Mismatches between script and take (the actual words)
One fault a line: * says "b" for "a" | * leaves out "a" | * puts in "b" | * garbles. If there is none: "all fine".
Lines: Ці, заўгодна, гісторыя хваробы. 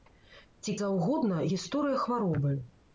all fine